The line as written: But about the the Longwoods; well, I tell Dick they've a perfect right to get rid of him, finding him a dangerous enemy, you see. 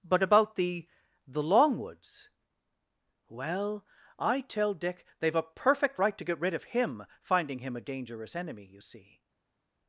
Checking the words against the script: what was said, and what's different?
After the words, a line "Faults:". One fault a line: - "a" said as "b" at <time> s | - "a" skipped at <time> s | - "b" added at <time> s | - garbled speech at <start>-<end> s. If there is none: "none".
But about the the Longwoods; well, I tell Dick they've a perfect right to get rid of him, finding him a dangerous enemy, you see.
Faults:
none